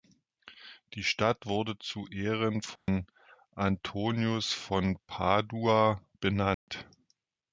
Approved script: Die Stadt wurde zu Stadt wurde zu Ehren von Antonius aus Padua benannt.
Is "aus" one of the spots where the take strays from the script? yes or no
yes